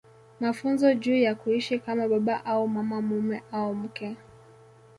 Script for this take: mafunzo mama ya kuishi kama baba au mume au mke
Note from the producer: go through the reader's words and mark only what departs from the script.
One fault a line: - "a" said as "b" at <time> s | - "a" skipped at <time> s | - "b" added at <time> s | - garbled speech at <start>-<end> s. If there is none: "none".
- "mama" said as "juu" at 0.9 s
- "mama" added at 2.7 s